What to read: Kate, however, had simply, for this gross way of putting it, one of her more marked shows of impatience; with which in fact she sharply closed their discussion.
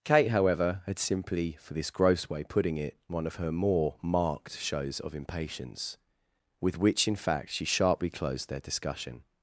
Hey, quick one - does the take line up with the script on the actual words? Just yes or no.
no